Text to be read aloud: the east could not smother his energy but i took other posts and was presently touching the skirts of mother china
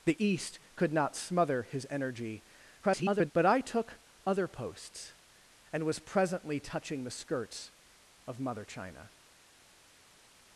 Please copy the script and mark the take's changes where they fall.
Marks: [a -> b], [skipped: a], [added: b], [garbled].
the east could not smother his energy [garbled] but i took other posts and was presently touching the skirts of mother china